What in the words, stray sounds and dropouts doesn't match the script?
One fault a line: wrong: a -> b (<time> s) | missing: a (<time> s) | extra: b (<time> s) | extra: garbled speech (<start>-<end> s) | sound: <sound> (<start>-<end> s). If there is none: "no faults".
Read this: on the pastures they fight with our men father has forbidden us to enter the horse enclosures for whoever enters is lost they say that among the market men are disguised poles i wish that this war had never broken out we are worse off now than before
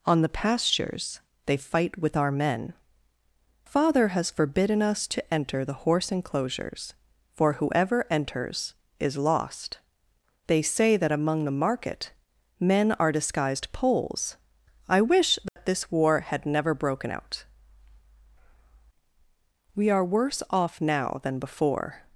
sound: dropout (15.5-15.6 s)